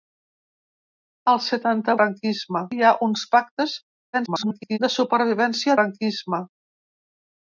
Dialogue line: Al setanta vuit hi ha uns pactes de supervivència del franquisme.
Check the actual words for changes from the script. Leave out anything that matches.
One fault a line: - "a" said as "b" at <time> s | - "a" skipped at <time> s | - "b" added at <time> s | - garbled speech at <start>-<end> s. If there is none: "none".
- "vuit" said as "franquisme" at 2.0 s
- garbled speech at 4.1-4.8 s
- "del" skipped at 5.8 s